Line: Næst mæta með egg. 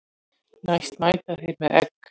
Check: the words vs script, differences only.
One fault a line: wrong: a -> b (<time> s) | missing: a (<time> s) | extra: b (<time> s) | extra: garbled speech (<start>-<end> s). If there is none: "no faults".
extra: þeir (1.4 s)